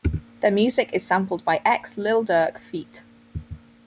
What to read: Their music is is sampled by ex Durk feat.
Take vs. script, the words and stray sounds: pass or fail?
fail